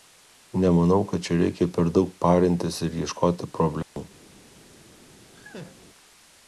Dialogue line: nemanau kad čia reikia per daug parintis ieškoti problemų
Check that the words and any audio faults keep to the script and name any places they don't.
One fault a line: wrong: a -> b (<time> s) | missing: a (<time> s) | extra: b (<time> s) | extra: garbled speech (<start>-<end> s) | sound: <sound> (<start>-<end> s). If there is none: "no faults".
extra: ir (2.9 s)
sound: dropout (3.8-4.0 s)
sound: laugh (5.3-5.8 s)